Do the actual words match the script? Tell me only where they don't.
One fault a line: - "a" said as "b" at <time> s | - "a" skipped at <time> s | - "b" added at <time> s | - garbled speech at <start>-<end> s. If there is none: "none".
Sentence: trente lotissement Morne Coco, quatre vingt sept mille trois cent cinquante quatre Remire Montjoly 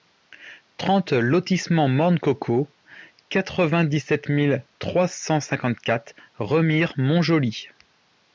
- "dix" added at 3.8 s